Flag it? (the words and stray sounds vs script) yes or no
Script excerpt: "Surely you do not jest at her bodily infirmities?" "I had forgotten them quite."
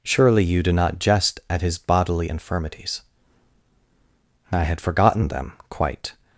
yes